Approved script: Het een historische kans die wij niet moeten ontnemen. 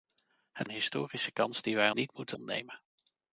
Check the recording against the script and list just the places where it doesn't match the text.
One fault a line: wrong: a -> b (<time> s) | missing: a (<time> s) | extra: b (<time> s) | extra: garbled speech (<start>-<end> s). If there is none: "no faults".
no faults